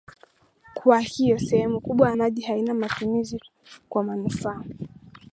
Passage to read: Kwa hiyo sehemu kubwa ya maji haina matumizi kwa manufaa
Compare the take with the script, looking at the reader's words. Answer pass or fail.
pass